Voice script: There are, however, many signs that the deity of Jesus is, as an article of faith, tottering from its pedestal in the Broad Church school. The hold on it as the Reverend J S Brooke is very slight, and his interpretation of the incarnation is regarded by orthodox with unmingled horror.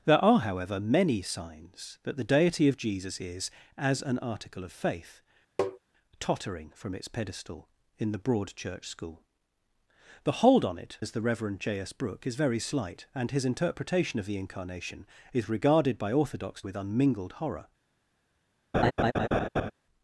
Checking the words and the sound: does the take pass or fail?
fail